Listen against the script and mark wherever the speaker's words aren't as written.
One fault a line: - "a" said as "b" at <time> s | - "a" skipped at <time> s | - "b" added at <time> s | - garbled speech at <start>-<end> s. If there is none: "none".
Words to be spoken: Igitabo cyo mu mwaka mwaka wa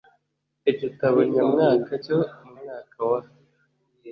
- "nyamwaka" added at 1.3 s
- "mwaka" skipped at 3.0 s